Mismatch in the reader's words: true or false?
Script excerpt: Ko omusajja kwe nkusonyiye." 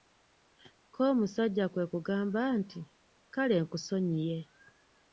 true